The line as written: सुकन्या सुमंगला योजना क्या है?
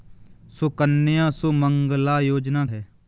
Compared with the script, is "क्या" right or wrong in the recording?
wrong